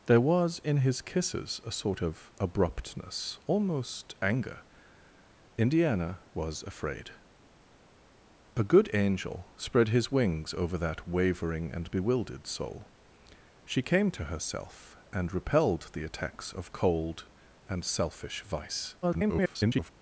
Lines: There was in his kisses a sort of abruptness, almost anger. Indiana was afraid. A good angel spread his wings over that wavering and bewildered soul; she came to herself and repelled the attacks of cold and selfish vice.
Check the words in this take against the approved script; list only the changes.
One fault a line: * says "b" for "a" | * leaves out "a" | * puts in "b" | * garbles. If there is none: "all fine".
* garbles